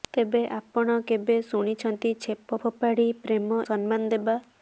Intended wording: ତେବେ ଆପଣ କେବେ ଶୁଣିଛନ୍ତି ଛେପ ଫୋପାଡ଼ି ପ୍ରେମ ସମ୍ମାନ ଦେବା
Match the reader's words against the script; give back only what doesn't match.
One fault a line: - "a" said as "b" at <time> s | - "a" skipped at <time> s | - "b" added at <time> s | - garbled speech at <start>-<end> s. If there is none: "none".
none